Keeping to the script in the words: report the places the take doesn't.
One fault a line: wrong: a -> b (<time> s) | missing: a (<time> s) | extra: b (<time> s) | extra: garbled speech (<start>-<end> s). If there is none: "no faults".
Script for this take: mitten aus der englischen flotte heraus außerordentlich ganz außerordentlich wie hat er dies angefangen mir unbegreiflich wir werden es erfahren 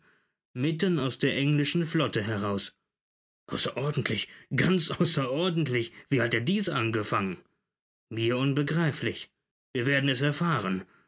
no faults